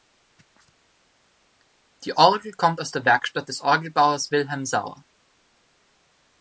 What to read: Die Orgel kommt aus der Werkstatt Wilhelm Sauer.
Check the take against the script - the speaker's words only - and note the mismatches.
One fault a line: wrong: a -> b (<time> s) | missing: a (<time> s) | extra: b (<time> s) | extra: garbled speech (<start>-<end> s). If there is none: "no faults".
extra: des Orgelbauers (3.5 s)